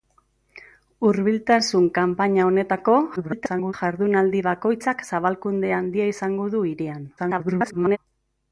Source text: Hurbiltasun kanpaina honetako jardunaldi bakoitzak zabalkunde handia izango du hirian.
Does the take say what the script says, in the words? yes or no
no